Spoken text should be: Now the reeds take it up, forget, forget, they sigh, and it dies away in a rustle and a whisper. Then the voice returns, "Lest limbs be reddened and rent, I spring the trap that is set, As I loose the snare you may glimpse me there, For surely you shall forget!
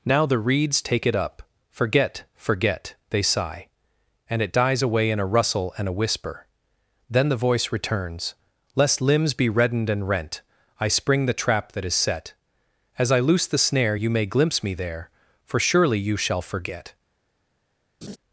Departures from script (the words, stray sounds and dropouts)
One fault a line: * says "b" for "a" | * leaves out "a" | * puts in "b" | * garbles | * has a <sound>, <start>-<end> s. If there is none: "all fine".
* has a laugh, 18.0-18.2 s